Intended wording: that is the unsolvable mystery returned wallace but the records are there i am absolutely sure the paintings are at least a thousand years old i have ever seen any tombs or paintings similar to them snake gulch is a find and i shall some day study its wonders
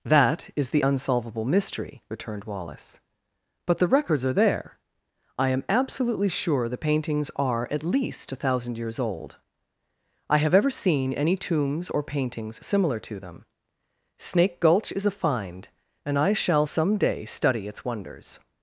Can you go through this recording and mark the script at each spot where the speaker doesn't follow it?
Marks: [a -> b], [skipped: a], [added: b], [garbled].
that is the unsolvable mystery returned wallace but the records are there i am absolutely sure the paintings are at least a thousand years old i have ever seen any tombs or paintings similar to them snake gulch is a find and i shall some day study its wonders